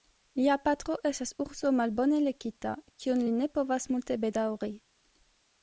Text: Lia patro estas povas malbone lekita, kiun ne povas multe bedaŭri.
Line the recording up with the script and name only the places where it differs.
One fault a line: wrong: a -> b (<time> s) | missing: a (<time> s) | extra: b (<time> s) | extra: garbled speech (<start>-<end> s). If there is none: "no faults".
wrong: povas -> urso (1.4 s)
extra: li (3.2 s)